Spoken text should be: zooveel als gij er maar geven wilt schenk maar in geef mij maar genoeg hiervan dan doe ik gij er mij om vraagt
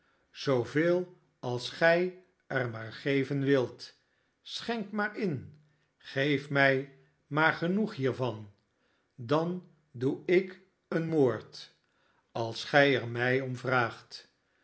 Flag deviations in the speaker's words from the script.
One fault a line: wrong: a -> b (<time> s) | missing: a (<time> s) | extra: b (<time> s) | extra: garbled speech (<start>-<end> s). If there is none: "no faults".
extra: een moord als (10.9 s)